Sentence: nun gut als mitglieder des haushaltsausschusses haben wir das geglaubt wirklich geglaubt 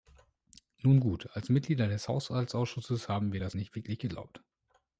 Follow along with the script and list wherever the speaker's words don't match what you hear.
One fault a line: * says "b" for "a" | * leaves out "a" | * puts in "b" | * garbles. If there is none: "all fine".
* says "nicht" for "geglaubt"